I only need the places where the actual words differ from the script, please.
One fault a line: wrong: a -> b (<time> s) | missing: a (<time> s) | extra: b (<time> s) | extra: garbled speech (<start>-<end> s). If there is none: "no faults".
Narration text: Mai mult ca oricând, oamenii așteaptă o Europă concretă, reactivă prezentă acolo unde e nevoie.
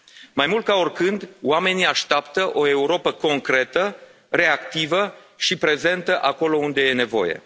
extra: și (5.4 s)